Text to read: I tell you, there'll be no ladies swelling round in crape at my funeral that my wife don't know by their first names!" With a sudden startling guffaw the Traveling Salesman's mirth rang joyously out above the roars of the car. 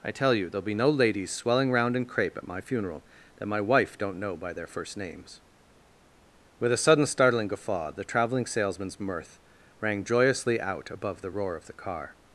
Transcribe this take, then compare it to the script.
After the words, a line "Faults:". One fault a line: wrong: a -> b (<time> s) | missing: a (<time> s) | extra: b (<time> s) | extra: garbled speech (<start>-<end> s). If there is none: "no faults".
I tell you, there'll be no ladies swelling round in crape at my funeral that my wife don't know by their first names!" With a sudden startling guffaw the Traveling Salesman's mirth rang joyously out above the roar of the car.
Faults:
wrong: roars -> roar (11.3 s)